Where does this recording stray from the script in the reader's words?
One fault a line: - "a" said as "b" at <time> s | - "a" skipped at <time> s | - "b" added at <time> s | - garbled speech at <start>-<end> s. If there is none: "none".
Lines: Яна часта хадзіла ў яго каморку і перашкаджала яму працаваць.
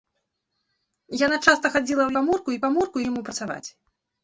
- "яго" skipped at 2.1 s
- "перашкаджала" said as "каморку" at 2.7 s